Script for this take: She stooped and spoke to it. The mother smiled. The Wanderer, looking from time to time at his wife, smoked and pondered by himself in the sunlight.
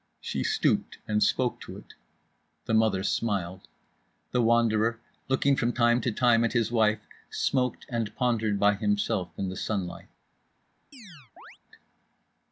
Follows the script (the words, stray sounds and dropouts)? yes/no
no